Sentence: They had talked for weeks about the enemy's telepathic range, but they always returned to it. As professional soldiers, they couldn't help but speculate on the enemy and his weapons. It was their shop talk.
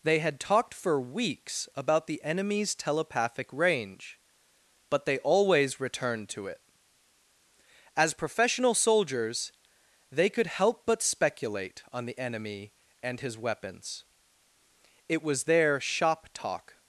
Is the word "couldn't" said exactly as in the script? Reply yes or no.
no